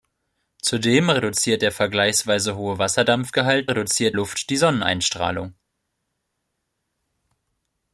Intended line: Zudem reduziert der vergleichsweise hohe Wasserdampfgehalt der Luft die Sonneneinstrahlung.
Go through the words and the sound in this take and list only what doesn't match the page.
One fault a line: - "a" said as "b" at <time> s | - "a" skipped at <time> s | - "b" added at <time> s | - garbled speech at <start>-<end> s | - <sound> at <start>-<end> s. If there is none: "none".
- "der" said as "reduziert" at 3.6 s